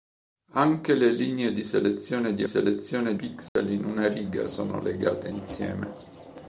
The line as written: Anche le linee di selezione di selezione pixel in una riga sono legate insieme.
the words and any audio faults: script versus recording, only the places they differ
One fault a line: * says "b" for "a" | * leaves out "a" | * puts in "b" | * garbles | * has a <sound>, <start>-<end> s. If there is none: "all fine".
* has a dropout, 3.5-3.6 s